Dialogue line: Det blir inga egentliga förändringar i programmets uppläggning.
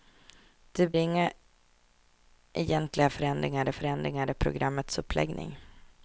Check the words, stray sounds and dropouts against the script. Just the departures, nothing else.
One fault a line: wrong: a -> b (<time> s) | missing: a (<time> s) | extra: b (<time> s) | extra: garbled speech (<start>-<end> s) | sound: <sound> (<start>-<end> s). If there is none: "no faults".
missing: blir (0.9 s)
extra: förändringar (3.7 s)